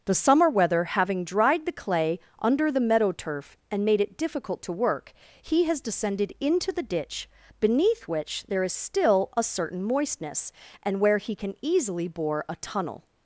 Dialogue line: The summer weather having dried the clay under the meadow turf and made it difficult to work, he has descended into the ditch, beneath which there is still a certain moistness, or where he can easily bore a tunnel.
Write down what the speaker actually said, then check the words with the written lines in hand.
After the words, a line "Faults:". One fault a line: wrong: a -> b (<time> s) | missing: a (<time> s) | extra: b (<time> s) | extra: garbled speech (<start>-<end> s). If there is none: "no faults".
The summer weather having dried the clay under the meadow turf and made it difficult to work, he has descended into the ditch, beneath which there is still a certain moistness, and where he can easily bore a tunnel.
Faults:
wrong: or -> and (10.8 s)